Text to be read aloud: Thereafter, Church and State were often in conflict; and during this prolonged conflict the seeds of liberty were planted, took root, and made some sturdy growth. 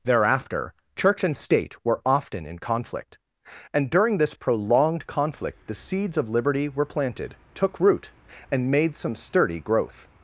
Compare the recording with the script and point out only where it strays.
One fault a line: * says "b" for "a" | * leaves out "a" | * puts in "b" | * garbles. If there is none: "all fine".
all fine